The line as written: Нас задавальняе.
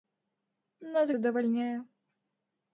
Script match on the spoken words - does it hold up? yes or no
yes